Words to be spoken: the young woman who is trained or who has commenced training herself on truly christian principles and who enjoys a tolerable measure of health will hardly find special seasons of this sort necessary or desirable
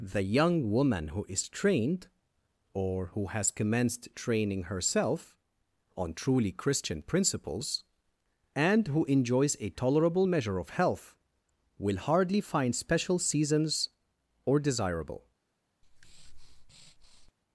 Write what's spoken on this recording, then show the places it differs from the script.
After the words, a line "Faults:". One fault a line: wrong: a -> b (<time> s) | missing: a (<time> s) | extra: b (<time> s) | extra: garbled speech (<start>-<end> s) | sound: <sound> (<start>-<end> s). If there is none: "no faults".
the young woman who is trained or who has commenced training herself on truly christian principles and who enjoys a tolerable measure of health will hardly find special seasons or desirable
Faults:
missing: of this sort necessary (13.9 s)
sound: breath (15.8-17.3 s)